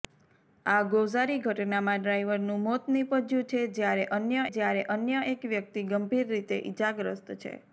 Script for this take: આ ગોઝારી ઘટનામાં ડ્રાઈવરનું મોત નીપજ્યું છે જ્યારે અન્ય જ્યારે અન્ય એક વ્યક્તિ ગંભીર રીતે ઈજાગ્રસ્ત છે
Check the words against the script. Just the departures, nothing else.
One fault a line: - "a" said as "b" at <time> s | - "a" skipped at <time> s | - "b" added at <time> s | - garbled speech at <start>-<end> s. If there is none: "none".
none